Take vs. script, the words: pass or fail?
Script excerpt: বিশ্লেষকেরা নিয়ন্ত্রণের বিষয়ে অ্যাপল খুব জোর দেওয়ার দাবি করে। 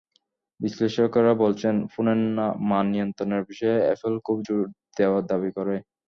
fail